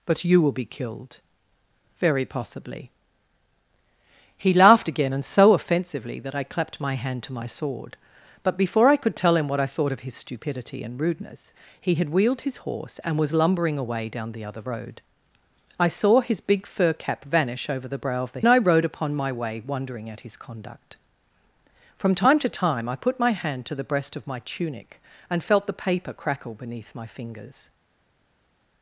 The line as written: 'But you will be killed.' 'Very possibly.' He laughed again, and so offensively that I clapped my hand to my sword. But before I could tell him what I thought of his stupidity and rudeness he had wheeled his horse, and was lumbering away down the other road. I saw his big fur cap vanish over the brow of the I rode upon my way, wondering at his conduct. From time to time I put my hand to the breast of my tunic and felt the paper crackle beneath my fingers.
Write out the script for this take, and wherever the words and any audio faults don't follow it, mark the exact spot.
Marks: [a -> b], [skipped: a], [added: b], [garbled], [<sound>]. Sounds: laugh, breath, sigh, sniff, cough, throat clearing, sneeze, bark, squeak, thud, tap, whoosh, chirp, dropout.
'But you will be killed.' 'Very possibly.' He laughed again, and so offensively that I clapped my hand to my sword. But before I could tell him what I thought of his stupidity and rudeness he had wheeled his horse, and was lumbering away down the other road. I saw his big fur cap vanish over the brow of the I rode upon my way, wondering at his conduct. From time to time I put my hand to the breast of my tunic and felt the paper crackle beneath my fingers.